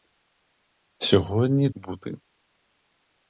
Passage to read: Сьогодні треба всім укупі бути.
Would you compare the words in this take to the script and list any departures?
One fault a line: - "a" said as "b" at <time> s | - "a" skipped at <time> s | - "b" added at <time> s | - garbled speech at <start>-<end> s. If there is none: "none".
- "треба всім укупі" skipped at 1.7 s